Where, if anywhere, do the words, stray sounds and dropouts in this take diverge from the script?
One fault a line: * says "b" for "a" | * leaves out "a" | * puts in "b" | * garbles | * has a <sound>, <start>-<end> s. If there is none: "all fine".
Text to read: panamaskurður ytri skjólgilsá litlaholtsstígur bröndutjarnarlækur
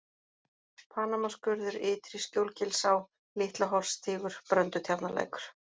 all fine